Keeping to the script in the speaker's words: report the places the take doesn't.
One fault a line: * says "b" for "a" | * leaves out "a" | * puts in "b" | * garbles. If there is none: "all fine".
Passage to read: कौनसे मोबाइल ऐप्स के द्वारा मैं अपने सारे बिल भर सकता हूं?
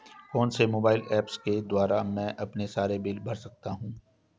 all fine